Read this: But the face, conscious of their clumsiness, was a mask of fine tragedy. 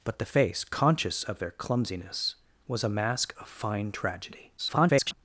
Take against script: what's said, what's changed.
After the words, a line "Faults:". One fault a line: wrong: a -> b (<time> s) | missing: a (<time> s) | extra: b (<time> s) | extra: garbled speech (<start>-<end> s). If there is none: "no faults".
But the face, conscious of their clumsiness, was a mask of fine tragedy. [garbled]
Faults:
extra: garbled speech (4.6-5.1 s)